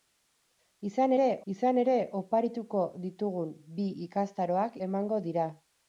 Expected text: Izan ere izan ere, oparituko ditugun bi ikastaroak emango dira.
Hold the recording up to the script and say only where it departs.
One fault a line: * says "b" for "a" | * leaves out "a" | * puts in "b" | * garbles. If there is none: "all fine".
all fine